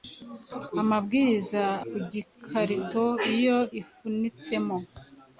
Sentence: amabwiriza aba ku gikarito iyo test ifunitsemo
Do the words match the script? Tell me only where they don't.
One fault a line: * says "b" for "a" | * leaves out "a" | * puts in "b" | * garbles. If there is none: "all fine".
* leaves out "aba"
* leaves out "test"